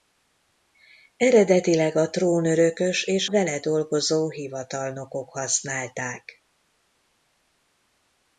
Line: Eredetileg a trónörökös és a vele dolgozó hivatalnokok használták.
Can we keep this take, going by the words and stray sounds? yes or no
no